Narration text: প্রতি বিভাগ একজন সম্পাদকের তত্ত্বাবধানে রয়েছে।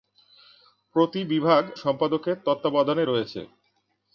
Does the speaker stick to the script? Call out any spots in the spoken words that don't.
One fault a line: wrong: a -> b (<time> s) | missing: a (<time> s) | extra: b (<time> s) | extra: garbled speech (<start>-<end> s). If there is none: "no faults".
missing: একজন (1.6 s)